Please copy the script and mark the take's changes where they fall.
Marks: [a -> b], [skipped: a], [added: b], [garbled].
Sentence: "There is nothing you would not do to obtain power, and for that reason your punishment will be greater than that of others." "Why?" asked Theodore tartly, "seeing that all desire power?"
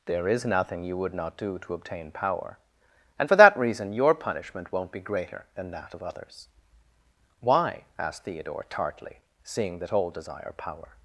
"There is nothing you would not do to obtain power, and for that reason your punishment [will -> won't] be greater than that of others." "Why?" asked Theodore tartly, "seeing that all desire power?"